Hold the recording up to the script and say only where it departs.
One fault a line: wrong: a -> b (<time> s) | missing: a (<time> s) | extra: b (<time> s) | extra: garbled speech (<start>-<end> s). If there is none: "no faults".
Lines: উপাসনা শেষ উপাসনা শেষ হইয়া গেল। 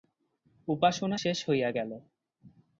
missing: উপাসনা শেষ (1.4 s)